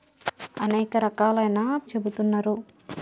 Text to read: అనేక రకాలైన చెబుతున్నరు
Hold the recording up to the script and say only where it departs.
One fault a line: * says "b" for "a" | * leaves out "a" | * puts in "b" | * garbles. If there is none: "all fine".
all fine